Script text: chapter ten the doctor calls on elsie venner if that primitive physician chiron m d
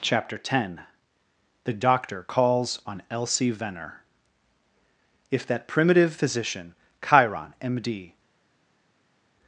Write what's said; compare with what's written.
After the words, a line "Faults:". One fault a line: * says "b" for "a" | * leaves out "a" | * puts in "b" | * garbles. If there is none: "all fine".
chapter ten the doctor calls on elsie venner if that primitive physician chiron m d
Faults:
all fine